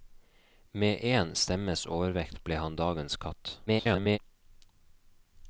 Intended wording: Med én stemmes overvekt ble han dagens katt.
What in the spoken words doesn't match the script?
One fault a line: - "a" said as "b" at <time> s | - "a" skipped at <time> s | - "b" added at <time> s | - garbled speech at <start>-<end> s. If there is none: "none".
- garbled speech at 3.7-4.2 s